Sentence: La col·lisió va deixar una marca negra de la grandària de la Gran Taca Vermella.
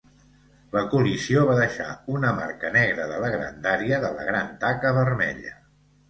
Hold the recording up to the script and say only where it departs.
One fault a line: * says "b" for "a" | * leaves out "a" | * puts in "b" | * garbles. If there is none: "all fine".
all fine